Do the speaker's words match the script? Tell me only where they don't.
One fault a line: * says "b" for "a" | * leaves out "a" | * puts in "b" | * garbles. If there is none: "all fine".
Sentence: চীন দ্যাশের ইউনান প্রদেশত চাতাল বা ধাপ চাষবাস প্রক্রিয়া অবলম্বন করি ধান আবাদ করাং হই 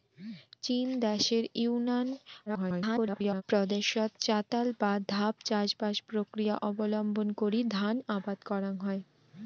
* garbles